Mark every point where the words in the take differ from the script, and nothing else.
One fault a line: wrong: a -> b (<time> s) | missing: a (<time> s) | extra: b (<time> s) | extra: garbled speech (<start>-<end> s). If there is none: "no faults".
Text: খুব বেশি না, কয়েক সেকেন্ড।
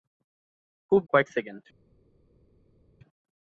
missing: বেশি না (1.0 s)